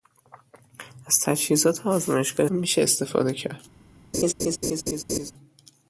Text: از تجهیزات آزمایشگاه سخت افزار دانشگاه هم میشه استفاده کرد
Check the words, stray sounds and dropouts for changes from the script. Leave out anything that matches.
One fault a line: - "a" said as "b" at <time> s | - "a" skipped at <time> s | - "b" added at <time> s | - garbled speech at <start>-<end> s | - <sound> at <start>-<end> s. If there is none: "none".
- "سخت افزار دانشگاه" skipped at 2.5 s
- laugh at 4.1-5.3 s